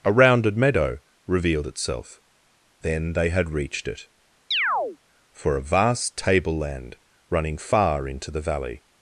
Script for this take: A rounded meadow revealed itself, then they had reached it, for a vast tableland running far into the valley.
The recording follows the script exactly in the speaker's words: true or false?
true